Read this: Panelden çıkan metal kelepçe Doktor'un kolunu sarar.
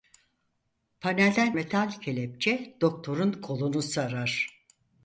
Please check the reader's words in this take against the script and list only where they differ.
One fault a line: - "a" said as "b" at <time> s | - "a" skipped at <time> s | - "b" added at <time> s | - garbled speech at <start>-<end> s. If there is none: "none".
- "çıkan" skipped at 1.5 s